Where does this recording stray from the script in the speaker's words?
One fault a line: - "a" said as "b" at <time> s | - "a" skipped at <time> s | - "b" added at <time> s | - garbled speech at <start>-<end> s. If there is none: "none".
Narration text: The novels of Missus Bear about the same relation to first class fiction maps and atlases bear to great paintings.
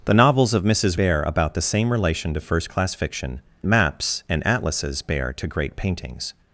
none